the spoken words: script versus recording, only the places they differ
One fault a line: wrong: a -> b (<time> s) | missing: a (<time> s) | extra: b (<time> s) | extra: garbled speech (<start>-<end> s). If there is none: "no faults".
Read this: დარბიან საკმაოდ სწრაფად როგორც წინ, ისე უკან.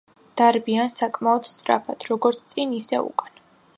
no faults